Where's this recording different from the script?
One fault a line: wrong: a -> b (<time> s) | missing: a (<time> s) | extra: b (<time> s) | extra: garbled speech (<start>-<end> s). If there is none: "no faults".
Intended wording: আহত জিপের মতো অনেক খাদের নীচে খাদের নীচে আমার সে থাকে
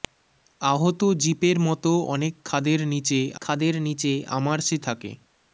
no faults